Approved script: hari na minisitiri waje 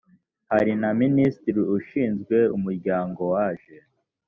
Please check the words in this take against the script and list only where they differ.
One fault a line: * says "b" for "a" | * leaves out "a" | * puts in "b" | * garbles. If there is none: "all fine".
* puts in "ushinzwe umuryango"